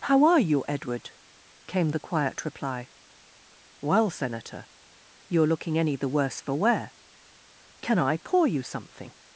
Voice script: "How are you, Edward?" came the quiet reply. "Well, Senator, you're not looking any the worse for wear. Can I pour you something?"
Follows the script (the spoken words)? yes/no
no